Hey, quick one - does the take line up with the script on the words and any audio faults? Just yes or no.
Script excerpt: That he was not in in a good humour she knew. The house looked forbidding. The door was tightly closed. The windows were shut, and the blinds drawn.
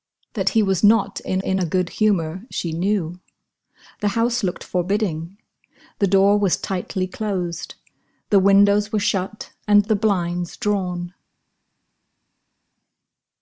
yes